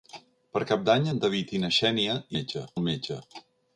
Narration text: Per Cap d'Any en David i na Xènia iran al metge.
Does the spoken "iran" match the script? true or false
false